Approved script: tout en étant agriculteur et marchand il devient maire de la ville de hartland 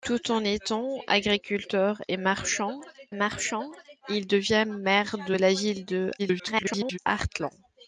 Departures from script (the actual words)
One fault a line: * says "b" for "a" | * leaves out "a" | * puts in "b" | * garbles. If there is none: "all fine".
* puts in "marchand"
* garbles